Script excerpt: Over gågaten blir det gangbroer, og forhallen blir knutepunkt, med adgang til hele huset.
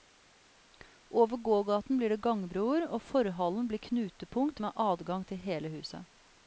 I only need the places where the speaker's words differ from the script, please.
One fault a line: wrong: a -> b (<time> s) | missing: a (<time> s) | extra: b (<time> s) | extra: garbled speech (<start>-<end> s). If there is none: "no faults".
no faults